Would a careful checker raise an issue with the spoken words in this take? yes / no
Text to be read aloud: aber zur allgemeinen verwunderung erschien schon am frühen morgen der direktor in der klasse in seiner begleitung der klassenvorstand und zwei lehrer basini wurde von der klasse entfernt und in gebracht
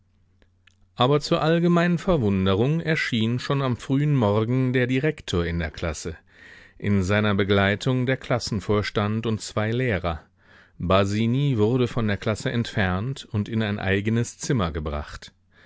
yes